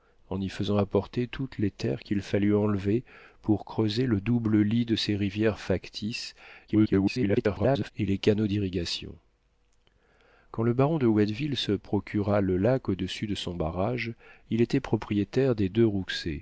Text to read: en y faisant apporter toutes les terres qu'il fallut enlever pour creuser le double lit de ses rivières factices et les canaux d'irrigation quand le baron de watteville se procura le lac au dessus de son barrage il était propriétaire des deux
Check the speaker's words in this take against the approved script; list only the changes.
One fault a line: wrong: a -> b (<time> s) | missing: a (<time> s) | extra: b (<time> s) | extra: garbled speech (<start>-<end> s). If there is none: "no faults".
extra: garbled speech (6.7-7.9 s)